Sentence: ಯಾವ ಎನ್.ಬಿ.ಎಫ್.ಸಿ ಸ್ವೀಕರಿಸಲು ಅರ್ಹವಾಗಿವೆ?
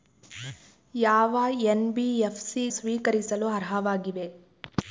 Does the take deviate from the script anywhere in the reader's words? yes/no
no